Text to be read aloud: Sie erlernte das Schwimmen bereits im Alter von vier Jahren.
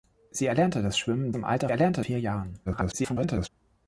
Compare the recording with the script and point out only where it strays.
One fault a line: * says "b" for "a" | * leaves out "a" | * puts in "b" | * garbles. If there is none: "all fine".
* leaves out "bereits"
* says "erlernte" for "von"
* garbles